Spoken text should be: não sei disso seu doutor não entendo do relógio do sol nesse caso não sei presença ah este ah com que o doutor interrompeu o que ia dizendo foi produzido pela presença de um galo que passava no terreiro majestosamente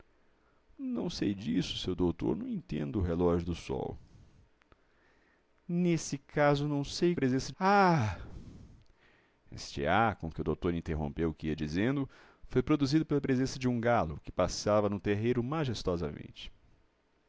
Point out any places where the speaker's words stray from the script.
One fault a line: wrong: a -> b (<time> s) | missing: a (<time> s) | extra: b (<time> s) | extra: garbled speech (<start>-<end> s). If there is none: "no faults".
no faults